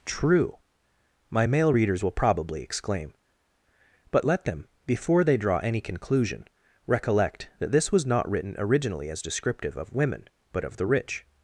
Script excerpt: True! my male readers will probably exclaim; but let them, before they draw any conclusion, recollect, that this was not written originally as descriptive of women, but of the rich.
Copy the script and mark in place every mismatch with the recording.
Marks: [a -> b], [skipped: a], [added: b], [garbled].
True! my male readers will probably exclaim; but let them, before they draw any conclusion, recollect, that this was not written originally as descriptive of women, but of the rich.